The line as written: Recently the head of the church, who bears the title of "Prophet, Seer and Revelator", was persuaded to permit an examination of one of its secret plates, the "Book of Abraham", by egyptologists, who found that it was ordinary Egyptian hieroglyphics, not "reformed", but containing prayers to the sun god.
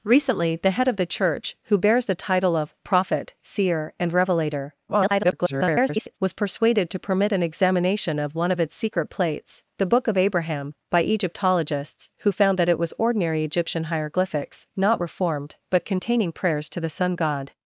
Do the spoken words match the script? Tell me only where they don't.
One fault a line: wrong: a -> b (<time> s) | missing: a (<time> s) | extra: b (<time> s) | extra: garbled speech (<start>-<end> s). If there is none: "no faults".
extra: garbled speech (4.9-6.2 s)